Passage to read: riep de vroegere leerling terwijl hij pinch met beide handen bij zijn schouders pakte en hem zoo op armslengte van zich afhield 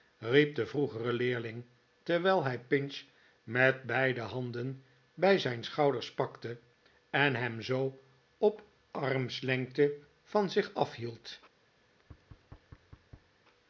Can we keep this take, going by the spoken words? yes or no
yes